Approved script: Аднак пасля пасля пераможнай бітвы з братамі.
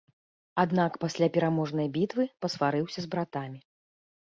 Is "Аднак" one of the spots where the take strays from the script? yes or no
no